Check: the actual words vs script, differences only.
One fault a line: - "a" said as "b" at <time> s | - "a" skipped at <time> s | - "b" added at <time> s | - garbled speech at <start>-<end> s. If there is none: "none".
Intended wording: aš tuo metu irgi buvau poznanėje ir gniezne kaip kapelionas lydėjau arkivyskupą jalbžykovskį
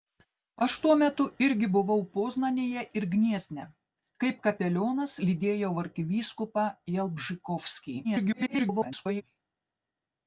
- garbled speech at 8.0-9.2 s